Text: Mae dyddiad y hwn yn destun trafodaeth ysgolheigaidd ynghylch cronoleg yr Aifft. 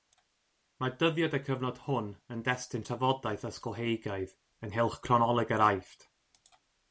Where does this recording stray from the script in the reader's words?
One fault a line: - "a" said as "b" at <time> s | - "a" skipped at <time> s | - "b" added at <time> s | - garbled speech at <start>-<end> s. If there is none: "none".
- "cyfnod" added at 1.5 s